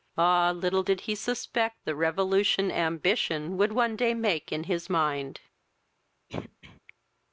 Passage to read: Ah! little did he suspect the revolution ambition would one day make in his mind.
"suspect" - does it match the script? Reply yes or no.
yes